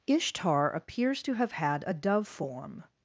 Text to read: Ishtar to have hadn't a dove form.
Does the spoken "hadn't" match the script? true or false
false